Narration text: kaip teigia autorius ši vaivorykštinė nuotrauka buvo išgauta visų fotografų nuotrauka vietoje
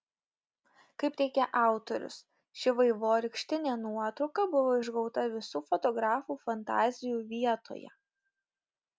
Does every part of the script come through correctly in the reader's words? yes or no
no